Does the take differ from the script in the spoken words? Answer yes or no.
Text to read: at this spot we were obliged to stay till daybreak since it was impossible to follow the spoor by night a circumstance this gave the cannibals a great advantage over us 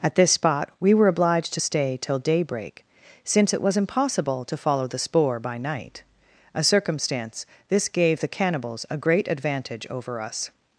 no